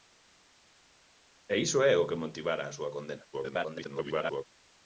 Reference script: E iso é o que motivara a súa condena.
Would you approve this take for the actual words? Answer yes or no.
no